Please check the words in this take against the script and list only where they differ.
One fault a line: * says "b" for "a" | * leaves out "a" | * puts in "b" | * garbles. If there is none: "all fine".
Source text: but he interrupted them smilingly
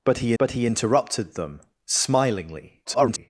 * puts in "but he"
* garbles